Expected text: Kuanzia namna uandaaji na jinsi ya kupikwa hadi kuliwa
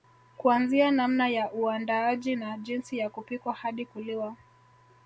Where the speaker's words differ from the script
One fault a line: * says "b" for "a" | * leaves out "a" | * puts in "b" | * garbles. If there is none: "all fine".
* puts in "ya"